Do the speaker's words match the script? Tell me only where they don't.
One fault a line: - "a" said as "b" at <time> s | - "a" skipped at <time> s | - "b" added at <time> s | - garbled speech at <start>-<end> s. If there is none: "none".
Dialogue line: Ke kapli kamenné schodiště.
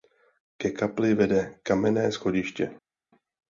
- "vede" added at 1.1 s